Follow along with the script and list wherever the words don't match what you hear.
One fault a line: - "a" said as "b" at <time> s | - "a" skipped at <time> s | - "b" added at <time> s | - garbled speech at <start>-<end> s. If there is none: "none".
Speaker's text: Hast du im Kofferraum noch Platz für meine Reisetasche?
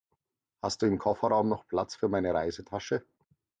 none